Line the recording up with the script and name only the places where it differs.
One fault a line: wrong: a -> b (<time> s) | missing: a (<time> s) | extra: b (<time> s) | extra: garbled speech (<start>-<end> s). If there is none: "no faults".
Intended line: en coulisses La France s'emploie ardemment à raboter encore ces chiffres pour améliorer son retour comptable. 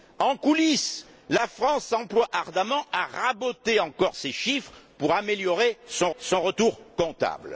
extra: son (6.2 s)